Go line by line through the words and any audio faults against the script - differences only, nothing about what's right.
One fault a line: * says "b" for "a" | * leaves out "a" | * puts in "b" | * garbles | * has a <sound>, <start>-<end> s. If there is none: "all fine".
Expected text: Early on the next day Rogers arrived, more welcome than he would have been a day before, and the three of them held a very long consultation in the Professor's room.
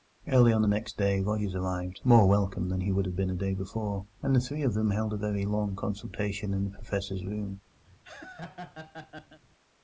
* has a laugh, 7.9-9.4 s